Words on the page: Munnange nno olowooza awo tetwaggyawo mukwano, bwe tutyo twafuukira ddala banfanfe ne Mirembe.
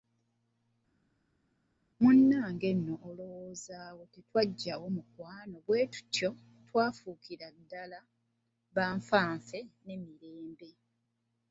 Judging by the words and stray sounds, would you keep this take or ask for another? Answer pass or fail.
pass